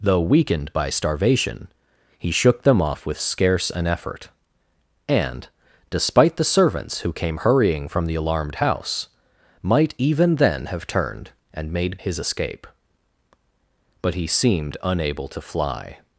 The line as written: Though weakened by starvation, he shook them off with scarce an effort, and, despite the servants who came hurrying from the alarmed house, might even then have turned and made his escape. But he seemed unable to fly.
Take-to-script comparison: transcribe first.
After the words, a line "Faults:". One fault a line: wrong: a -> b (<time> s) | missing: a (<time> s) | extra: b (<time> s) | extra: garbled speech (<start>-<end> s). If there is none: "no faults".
Though weakened by starvation, he shook them off with scarce an effort, and, despite the servants who came hurrying from the alarmed house, might even then have turned and made his escape. But he seemed unable to fly.
Faults:
no faults